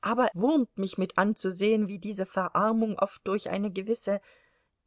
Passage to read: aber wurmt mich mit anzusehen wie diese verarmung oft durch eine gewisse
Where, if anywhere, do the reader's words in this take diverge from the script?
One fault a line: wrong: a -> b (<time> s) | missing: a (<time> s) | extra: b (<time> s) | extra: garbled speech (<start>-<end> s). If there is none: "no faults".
no faults